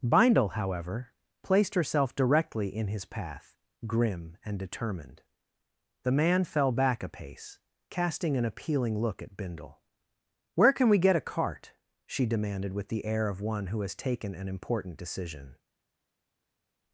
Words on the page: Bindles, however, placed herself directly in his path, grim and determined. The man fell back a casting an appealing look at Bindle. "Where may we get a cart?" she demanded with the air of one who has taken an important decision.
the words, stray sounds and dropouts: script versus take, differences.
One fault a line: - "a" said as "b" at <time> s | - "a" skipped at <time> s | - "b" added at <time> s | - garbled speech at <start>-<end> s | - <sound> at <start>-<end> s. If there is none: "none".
- "Bindles" said as "Bindle" at 0.0 s
- "pace" added at 7.1 s
- "may" said as "can" at 10.7 s